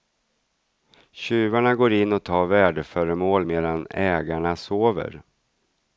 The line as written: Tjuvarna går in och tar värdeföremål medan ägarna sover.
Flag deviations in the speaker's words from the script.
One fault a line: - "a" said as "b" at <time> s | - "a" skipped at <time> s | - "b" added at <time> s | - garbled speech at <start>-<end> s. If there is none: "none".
none